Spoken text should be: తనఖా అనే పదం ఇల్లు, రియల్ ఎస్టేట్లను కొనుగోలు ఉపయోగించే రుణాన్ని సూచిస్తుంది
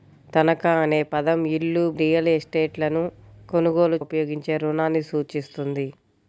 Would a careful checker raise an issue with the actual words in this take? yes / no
no